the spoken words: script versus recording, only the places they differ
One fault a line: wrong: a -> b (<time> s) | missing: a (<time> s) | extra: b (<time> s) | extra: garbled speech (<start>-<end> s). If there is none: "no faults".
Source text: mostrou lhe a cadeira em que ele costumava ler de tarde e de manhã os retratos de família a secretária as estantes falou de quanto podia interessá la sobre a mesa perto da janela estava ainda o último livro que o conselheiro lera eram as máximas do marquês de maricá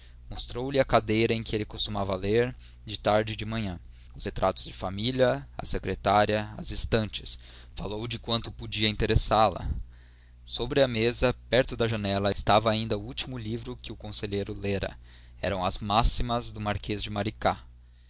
no faults